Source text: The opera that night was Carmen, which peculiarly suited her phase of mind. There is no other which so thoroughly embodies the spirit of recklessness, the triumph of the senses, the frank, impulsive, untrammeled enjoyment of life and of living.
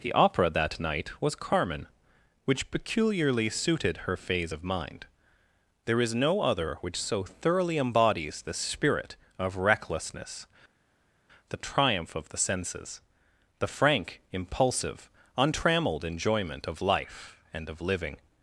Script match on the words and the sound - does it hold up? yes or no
yes